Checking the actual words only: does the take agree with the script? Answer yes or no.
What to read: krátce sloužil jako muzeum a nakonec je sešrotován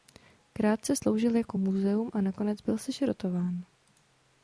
no